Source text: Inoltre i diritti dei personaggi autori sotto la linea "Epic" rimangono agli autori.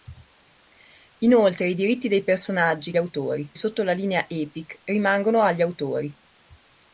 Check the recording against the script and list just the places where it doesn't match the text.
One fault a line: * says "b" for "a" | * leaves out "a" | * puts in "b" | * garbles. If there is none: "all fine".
all fine